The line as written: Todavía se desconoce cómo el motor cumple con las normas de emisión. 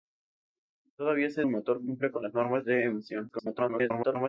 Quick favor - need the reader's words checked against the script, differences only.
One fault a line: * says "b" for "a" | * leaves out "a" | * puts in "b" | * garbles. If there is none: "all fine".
* leaves out "desconoce cómo"
* garbles